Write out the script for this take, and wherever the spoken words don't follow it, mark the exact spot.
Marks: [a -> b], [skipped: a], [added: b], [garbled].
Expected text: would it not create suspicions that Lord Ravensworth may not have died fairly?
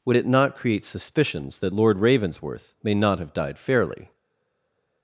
would it not create suspicions that Lord Ravensworth may not have died fairly?